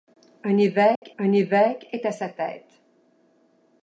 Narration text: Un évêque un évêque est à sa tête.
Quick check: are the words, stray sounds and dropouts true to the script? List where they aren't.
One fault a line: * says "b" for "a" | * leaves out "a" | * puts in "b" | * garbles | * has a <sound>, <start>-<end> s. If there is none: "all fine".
* has a dropout, 1.0-1.0 s